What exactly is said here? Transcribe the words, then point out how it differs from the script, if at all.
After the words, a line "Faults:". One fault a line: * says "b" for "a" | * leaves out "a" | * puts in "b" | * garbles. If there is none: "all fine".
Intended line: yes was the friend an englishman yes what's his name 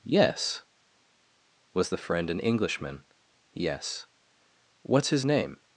yes was the friend an englishman yes what's his name
Faults:
all fine